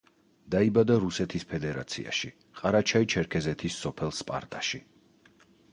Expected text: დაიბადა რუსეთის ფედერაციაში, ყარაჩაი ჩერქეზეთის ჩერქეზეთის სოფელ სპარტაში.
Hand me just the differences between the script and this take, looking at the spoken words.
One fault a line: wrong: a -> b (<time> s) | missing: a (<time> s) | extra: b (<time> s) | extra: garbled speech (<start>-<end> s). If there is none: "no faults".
missing: ჩერქეზეთის (3.8 s)